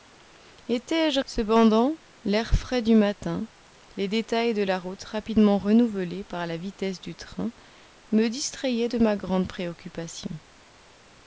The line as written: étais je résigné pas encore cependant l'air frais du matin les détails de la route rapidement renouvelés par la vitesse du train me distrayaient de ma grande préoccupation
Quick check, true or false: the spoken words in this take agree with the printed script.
false